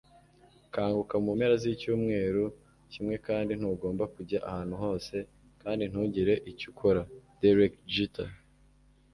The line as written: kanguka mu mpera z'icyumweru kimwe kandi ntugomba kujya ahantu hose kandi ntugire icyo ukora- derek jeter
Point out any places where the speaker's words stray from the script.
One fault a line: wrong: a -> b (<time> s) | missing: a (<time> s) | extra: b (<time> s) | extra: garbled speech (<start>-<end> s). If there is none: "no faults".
no faults